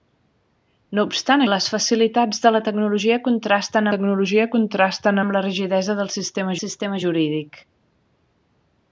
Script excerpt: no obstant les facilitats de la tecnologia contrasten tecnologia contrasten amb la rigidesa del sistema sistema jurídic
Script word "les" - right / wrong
right